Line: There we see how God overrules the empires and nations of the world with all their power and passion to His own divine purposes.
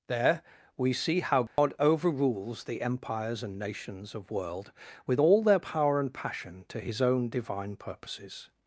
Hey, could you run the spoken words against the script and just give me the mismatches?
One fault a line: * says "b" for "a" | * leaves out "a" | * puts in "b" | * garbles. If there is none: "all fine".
* leaves out "the"